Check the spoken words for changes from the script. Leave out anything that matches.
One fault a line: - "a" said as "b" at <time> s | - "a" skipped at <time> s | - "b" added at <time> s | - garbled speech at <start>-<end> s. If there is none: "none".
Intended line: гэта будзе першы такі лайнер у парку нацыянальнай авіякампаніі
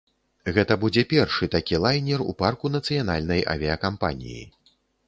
none